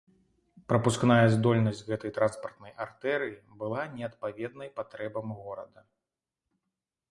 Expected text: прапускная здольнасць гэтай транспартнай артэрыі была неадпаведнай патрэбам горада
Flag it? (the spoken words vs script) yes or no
no